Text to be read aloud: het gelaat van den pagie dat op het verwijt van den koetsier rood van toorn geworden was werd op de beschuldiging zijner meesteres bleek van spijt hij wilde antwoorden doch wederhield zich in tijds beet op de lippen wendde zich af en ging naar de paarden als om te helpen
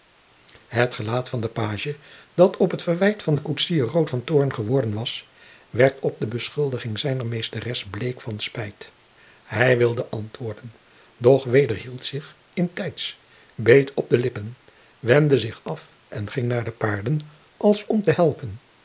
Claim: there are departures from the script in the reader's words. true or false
false